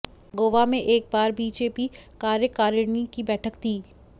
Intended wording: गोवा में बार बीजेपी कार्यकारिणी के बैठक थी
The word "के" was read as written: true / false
false